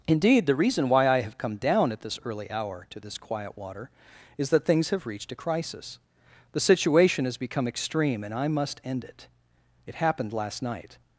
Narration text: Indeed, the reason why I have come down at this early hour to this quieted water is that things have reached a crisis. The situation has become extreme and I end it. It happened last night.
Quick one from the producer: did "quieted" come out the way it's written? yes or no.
no